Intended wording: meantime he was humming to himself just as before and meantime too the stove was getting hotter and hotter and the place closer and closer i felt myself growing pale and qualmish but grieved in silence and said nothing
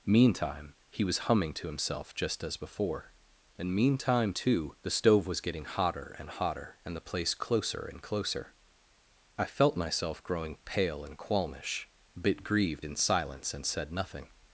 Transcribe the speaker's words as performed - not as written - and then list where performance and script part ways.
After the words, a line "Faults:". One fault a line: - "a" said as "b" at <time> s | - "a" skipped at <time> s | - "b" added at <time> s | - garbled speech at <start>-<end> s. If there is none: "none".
meantime he was humming to himself just as before and meantime too the stove was getting hotter and hotter and the place closer and closer i felt myself growing pale and qualmish bit grieved in silence and said nothing
Faults:
- "but" said as "bit" at 12.1 s